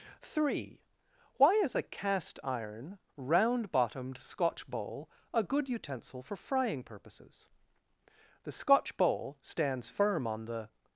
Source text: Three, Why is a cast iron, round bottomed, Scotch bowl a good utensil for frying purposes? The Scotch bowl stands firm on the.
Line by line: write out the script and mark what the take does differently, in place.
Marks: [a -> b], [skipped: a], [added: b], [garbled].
Three, Why is a cast iron, round bottomed, Scotch bowl a good utensil for frying purposes? The Scotch bowl stands firm on the.